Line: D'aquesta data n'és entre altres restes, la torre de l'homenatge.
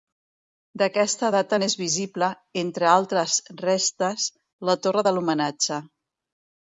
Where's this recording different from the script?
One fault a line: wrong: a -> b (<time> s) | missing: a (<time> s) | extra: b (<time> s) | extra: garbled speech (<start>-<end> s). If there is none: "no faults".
extra: visible (1.8 s)